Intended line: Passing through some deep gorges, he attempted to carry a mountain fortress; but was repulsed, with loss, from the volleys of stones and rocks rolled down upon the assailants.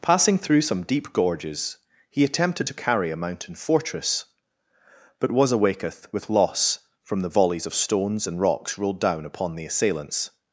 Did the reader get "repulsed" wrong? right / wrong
wrong